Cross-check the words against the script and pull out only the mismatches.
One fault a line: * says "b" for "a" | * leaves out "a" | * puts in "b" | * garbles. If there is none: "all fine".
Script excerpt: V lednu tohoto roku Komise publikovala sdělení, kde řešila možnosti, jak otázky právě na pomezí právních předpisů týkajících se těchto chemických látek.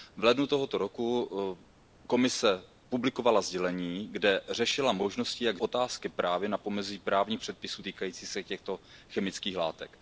all fine